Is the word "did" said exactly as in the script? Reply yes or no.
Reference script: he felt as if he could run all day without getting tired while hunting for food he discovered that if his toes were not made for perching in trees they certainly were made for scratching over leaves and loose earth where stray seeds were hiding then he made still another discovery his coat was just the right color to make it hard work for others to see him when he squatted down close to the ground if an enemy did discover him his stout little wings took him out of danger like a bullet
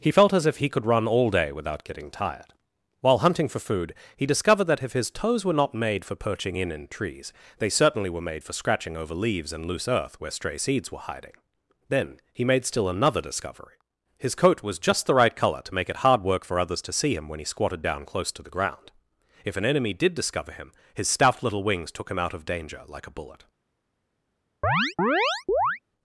yes